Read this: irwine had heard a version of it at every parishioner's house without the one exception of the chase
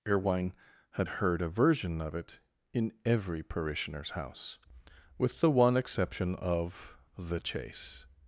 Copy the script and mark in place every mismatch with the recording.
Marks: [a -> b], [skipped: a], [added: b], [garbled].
irwine had heard a version of it [at -> in] every parishioner's house [without -> with] the one exception of the chase